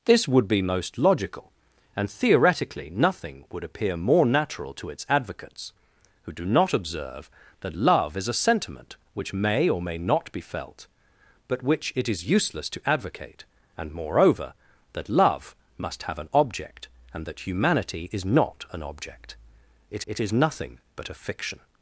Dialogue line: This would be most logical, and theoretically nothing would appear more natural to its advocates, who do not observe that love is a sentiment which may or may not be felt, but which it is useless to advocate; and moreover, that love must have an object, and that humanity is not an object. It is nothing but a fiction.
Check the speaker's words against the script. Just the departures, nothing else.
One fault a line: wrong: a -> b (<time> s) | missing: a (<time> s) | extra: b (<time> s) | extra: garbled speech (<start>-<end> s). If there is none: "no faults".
extra: it (20.1 s)